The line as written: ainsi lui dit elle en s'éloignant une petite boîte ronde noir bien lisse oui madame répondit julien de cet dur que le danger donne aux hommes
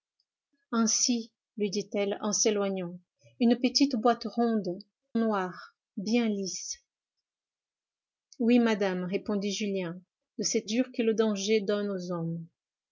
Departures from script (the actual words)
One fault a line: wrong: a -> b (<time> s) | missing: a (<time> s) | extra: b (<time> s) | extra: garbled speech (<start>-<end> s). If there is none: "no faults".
no faults